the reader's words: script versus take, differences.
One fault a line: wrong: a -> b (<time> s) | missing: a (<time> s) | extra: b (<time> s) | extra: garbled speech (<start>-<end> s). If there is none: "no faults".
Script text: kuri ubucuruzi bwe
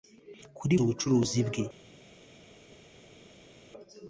no faults